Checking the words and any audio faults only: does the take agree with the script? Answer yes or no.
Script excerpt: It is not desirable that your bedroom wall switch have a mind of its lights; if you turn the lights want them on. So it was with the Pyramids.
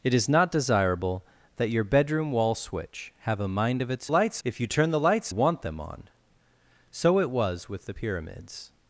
yes